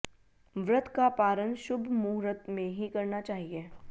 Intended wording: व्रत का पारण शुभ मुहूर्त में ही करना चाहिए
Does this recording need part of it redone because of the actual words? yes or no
no